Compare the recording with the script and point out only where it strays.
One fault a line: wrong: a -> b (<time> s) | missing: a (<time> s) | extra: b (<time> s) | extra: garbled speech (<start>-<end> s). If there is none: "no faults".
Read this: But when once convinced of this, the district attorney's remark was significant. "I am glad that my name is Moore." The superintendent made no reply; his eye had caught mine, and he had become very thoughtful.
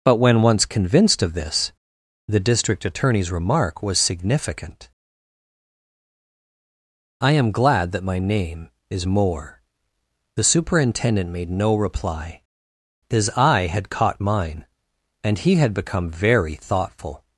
no faults